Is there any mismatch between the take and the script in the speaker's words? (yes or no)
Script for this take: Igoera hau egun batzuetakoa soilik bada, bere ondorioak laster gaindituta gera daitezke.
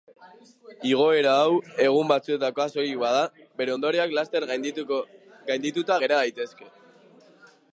no